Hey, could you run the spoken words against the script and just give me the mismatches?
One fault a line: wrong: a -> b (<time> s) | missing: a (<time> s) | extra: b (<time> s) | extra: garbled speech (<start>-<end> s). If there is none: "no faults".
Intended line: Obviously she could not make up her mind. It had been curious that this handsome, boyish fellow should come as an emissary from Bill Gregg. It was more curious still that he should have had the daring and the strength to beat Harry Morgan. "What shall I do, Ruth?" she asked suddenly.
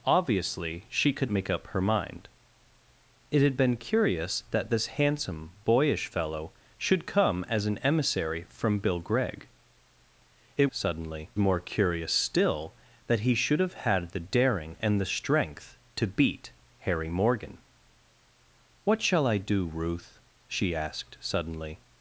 missing: not (1.3 s)
wrong: was -> suddenly (10.7 s)